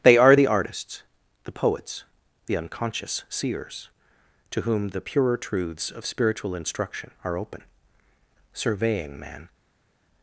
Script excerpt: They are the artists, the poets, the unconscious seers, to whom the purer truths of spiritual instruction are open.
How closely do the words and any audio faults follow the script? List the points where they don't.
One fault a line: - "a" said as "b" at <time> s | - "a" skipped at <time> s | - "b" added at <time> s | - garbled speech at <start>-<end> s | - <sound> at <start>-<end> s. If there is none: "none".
- "Surveying man" added at 8.5 s